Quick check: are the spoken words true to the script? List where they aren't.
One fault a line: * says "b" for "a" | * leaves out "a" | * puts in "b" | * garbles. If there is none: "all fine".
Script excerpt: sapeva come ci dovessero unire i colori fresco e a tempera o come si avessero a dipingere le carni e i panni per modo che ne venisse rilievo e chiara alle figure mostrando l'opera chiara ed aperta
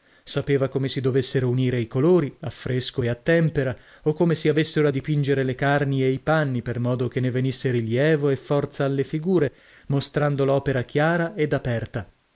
* says "si" for "ci"
* puts in "a"
* says "forza" for "chiara"